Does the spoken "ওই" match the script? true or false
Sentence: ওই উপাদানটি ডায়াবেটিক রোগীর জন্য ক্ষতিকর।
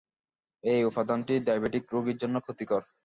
false